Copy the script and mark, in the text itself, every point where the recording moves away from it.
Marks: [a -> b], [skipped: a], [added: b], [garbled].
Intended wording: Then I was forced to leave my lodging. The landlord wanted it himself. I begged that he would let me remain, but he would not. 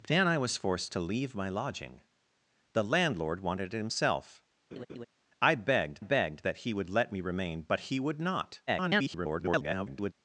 Then I was forced to leave my lodging. The landlord wanted it himself. I begged [added: begged] that he would let me remain, but he would not. [garbled]